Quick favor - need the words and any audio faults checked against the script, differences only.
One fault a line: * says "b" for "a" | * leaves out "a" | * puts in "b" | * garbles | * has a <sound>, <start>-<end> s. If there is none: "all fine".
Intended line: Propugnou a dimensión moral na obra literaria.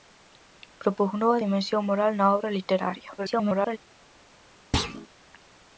* garbles
* has a thud, 4.7-5.1 s